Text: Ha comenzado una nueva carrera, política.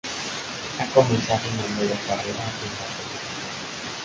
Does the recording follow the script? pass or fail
fail